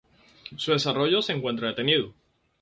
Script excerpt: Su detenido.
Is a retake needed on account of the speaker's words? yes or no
yes